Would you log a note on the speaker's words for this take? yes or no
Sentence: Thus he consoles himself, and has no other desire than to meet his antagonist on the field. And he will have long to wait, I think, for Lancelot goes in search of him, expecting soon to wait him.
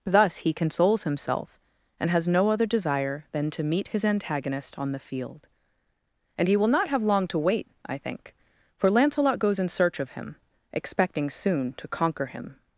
yes